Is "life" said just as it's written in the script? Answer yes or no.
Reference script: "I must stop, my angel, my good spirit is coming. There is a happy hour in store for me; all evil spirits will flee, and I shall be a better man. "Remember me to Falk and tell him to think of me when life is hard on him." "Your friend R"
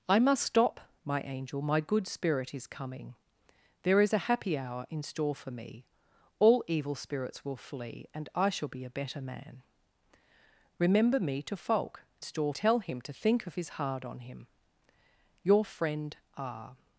no